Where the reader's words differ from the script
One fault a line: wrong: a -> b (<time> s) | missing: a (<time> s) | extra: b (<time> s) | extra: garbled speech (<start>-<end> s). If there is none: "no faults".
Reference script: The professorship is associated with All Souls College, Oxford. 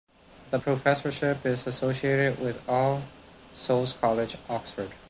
no faults